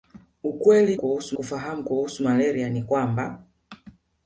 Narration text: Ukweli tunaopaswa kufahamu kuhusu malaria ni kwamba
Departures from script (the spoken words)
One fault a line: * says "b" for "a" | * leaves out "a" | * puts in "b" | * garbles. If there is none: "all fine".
* says "kuhusu" for "tunaopaswa"